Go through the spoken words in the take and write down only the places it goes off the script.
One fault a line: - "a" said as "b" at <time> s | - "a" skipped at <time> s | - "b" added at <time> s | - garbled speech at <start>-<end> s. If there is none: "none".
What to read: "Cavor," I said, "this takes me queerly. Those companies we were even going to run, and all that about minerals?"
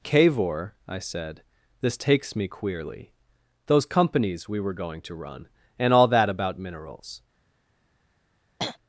- "even" skipped at 4.7 s